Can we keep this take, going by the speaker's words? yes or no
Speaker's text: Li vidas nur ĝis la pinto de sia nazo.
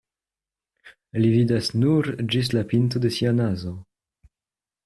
yes